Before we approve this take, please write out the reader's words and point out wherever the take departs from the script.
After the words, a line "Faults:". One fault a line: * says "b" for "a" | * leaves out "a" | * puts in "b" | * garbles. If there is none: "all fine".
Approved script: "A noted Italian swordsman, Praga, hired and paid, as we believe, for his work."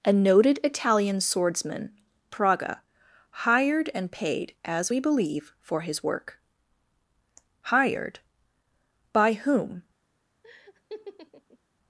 "A noted Italian swordsman, Praga, hired and paid, as we believe, for his work." "Hired? By whom
Faults:
* puts in "Hired By whom"